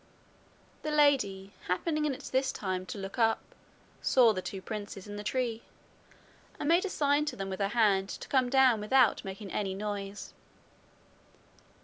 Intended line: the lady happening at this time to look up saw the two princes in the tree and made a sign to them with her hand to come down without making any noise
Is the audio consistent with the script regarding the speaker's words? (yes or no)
yes